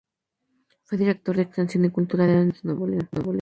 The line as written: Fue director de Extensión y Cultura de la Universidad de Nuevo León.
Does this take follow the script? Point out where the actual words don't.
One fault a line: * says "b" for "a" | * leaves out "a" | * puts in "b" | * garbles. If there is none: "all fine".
all fine